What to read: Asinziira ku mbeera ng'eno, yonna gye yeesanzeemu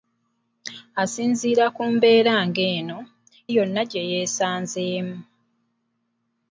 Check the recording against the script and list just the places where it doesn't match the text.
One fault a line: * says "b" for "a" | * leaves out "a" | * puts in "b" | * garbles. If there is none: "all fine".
all fine